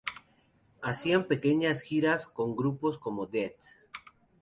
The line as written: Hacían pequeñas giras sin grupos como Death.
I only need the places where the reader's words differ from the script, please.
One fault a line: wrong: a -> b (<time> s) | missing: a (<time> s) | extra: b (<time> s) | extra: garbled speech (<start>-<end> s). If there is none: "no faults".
wrong: sin -> con (2.2 s)